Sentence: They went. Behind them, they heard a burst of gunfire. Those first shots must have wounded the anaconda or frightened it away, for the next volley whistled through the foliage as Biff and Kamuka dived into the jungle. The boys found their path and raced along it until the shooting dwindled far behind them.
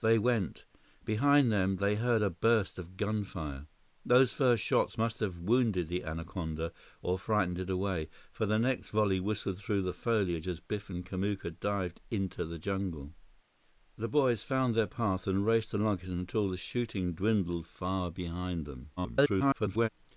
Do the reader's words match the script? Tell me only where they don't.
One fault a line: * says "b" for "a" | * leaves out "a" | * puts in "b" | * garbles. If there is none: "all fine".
* garbles